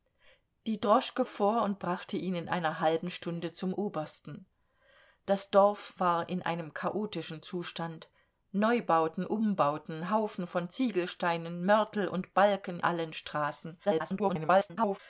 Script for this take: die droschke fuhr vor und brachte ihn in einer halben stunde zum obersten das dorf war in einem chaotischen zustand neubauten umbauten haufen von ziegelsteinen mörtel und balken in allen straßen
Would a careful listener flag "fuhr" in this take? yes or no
yes